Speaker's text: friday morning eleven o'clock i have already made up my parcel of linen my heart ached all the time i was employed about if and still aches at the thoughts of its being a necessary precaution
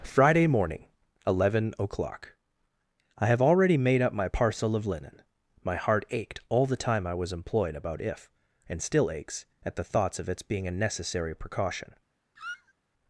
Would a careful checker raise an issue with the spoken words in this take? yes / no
no